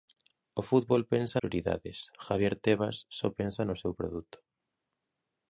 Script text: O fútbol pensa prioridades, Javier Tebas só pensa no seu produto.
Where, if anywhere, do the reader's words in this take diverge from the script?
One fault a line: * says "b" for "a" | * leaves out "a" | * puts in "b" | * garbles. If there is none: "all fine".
all fine